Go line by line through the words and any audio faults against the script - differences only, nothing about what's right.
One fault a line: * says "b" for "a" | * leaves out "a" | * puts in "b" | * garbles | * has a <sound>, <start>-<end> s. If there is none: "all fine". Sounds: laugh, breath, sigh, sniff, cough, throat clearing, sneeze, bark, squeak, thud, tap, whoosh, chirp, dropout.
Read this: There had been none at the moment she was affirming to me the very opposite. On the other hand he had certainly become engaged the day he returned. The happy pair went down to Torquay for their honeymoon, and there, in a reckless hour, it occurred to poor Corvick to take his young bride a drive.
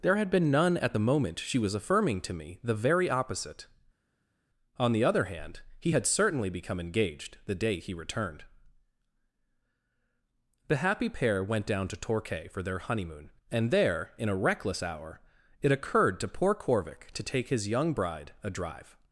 all fine